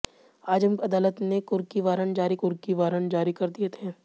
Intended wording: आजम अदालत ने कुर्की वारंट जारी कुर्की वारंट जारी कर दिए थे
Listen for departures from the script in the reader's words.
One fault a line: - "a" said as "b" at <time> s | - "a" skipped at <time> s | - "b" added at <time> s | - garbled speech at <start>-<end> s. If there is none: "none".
none